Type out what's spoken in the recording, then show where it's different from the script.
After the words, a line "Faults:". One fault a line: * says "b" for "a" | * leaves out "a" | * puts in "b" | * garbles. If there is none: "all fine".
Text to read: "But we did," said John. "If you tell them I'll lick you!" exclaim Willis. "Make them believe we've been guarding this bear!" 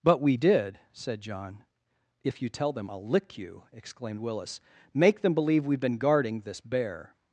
"But we did," said John. "If you tell them I'll lick you!" exclaimed Willis. "Make them believe we've been guarding this bear!"
Faults:
* says "exclaimed" for "exclaim"